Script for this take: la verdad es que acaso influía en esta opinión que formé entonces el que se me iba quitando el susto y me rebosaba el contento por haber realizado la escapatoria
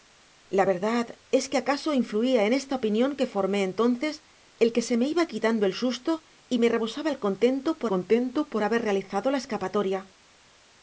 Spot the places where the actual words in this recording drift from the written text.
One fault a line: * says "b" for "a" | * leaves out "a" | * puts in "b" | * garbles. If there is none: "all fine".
* puts in "contento por"